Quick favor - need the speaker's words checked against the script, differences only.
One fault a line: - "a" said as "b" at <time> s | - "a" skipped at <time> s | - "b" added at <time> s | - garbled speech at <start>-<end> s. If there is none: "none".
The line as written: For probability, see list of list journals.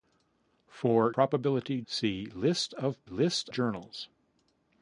none